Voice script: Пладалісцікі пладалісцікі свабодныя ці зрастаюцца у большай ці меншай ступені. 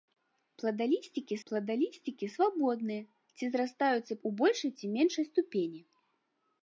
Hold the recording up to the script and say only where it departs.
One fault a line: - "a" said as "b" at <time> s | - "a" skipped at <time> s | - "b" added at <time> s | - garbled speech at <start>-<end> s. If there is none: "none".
none